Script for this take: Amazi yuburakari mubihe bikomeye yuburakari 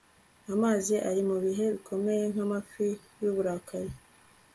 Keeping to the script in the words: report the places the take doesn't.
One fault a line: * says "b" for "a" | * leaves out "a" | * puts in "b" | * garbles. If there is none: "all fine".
* says "ari" for "yuburakari"
* puts in "nkamafi"